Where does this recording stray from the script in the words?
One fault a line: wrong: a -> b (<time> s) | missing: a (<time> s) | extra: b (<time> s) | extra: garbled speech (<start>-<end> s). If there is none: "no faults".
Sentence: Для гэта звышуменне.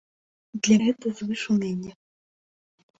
no faults